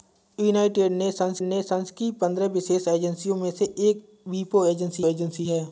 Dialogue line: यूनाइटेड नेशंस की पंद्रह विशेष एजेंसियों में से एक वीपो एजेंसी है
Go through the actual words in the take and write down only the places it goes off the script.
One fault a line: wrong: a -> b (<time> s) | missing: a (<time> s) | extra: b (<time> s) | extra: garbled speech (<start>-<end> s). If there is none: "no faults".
extra: नेशंस (1.4 s)
extra: एजेंसी (5.0 s)